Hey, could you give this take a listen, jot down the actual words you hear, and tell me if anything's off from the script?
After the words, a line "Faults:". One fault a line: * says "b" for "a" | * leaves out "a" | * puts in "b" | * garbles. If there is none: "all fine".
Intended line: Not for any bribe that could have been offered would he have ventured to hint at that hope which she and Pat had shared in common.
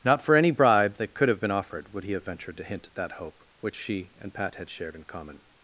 Not for any bribe that could have been offered would he have ventured to hint at that hope which she and Pat had shared in common.
Faults:
all fine